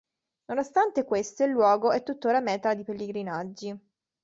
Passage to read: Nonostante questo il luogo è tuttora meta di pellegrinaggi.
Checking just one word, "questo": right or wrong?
right